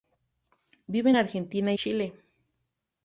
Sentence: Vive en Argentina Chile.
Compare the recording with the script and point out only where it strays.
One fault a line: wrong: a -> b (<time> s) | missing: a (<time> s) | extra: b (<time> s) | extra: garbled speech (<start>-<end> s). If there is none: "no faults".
no faults